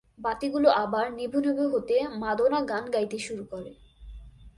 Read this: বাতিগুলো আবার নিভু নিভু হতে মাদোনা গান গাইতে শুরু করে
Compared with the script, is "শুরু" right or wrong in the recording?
right